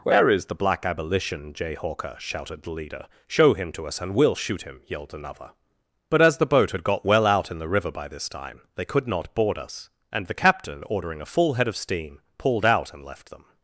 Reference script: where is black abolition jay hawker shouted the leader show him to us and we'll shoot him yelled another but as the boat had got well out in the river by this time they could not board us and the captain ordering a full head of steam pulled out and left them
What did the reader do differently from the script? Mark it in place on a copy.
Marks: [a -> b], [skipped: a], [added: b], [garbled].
where is [added: the] black abolition jay hawker shouted the leader show him to us and we'll shoot him yelled another but as the boat had got well out in the river by this time they could not board us and the captain ordering a full head of steam pulled out and left them